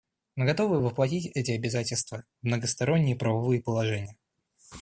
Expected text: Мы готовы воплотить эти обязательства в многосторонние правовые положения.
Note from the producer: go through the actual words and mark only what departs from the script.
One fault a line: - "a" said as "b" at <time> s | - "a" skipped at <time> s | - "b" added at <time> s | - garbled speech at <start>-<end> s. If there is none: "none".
none